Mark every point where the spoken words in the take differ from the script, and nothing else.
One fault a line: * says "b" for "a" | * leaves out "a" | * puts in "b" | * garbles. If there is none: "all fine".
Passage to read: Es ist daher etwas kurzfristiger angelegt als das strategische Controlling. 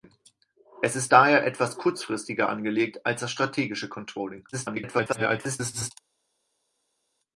* garbles